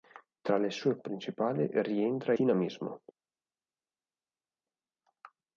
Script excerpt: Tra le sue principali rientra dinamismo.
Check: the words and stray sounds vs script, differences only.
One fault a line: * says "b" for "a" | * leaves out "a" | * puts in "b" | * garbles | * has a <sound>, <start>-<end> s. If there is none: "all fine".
all fine